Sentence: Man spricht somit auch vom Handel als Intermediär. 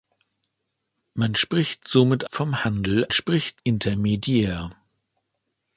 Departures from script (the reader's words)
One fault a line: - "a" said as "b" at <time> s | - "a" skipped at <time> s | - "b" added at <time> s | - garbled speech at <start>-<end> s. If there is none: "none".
- "auch" skipped at 2.2 s
- "als" said as "spricht" at 3.1 s